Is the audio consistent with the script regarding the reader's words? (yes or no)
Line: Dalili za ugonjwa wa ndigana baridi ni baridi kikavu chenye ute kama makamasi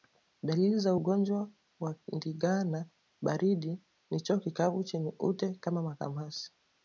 no